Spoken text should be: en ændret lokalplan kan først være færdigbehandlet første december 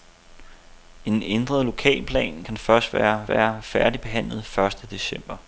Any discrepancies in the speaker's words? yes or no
yes